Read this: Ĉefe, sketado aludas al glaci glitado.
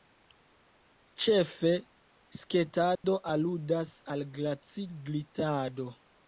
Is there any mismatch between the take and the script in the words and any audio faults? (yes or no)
yes